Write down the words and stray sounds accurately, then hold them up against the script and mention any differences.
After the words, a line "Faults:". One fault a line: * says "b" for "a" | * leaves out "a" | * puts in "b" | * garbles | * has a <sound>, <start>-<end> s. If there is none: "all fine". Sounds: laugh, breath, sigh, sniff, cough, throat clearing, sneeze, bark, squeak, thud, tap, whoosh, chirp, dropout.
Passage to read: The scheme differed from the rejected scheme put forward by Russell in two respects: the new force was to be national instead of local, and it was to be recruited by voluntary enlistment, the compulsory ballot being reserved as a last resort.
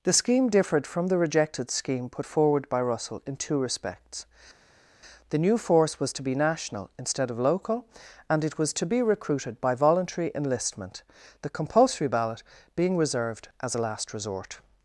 The scheme differed from the rejected scheme put forward by Russell in two respects: the new force was to be national instead of local, and it was to be recruited by voluntary enlistment, the compulsory ballot being reserved as a last resort.
Faults:
all fine